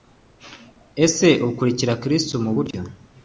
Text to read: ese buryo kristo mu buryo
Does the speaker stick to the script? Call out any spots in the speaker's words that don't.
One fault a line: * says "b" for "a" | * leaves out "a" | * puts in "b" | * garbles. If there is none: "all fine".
* says "ukurikira" for "buryo"